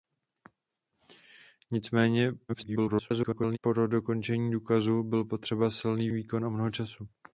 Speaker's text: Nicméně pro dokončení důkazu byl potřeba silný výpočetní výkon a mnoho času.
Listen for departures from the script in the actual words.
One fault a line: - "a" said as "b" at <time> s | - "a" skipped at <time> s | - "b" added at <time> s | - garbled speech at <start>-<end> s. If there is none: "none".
- garbled speech at 2.5-3.6 s
- "výpočetní" skipped at 6.1 s